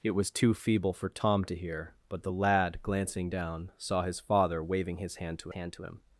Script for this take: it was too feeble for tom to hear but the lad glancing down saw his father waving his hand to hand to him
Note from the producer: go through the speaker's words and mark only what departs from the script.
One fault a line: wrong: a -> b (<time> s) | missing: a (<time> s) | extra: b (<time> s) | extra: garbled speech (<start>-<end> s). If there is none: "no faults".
no faults